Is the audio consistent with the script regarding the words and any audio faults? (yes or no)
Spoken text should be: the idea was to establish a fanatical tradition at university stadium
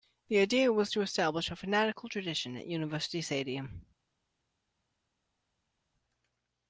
yes